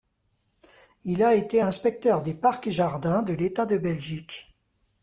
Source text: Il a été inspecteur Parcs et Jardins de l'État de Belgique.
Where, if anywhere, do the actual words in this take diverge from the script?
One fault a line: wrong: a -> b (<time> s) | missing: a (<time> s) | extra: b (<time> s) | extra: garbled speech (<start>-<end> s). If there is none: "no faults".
extra: des (2.2 s)